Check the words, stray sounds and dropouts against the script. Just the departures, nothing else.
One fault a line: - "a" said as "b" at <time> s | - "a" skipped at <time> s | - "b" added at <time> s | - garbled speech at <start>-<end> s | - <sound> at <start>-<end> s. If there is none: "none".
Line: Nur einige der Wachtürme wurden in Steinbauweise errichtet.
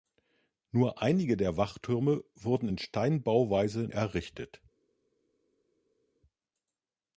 none